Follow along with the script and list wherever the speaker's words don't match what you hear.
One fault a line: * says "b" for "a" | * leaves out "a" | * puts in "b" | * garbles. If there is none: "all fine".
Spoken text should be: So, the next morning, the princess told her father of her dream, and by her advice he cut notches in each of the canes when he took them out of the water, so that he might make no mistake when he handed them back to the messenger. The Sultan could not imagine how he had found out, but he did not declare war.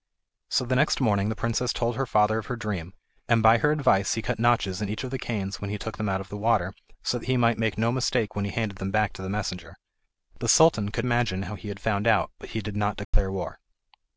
* leaves out "not"